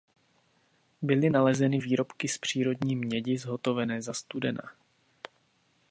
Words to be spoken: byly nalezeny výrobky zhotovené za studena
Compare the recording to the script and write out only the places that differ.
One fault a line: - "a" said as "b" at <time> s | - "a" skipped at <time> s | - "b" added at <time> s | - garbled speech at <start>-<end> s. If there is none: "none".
- "z přírodní mědi" added at 2.3 s